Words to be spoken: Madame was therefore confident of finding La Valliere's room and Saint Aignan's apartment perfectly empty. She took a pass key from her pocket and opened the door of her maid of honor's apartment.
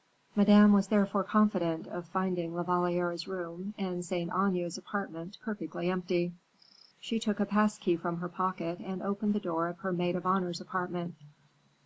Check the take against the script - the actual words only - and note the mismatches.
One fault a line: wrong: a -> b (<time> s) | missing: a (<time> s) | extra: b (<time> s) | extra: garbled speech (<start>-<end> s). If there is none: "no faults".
no faults